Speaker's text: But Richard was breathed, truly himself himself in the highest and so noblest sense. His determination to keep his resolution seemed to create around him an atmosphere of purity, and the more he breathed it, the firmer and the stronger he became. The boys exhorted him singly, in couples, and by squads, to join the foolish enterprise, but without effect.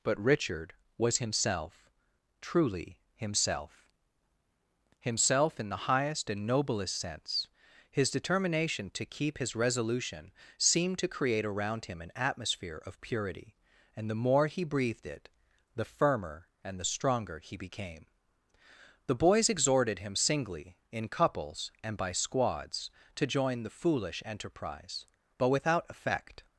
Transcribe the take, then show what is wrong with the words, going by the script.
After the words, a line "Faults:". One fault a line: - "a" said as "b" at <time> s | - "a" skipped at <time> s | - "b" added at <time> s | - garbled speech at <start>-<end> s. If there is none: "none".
But Richard was himself, truly himself himself in the highest and noblest sense. His determination to keep his resolution seemed to create around him an atmosphere of purity, and the more he breathed it, the firmer and the stronger he became. The boys exhorted him singly, in couples, and by squads, to join the foolish enterprise, but without effect.
Faults:
- "breathed" said as "himself" at 1.2 s
- "so" skipped at 6.5 s